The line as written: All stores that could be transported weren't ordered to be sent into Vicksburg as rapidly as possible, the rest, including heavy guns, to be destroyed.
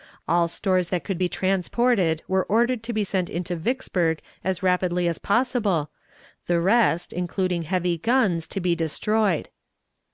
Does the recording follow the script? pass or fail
fail